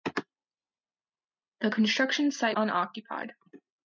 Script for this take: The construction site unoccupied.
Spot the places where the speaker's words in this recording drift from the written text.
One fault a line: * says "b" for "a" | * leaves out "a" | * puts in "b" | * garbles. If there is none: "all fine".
all fine